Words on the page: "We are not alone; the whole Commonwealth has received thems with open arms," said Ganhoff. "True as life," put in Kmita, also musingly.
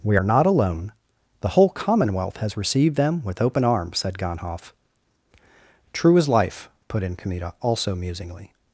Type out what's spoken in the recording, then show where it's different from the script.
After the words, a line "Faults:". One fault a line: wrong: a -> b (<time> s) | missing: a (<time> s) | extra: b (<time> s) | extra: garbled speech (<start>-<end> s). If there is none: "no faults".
"We are not alone; the whole Commonwealth has received them with open arms," said Ganhoff. "True as life," put in Kmita, also musingly.
Faults:
wrong: thems -> them (3.0 s)